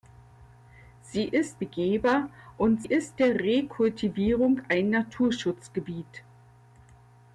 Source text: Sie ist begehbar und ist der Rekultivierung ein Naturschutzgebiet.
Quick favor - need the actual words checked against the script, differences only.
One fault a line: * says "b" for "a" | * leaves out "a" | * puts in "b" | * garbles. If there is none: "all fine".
all fine